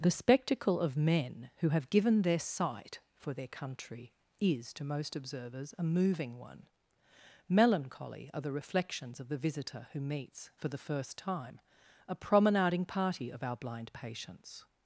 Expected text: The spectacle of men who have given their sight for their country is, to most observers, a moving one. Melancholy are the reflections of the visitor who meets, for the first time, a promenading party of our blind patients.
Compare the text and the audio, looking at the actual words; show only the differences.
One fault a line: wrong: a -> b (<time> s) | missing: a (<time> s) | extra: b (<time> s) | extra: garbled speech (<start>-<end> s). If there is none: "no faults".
no faults